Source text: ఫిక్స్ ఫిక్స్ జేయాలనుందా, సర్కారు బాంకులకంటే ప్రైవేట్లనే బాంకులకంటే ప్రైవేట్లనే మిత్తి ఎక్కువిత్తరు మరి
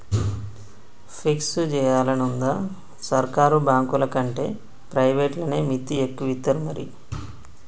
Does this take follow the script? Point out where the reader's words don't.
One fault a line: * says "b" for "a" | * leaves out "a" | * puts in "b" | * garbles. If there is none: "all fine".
* leaves out "ఫిక్స్"
* leaves out "బాంకులకంటే ప్రైవేట్లనే"